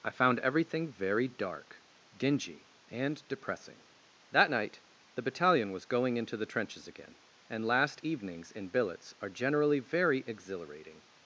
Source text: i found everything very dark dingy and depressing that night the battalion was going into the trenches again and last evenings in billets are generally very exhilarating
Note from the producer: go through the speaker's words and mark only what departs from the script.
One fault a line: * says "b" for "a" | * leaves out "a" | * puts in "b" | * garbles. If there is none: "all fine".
all fine